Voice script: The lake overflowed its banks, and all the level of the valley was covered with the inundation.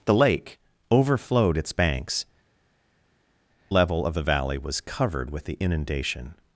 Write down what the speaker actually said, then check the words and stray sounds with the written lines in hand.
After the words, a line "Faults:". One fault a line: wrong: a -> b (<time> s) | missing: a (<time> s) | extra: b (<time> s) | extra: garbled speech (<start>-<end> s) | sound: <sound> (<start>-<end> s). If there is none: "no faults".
The lake overflowed its banks, level of the valley was covered with the inundation.
Faults:
missing: and all the (2.2 s)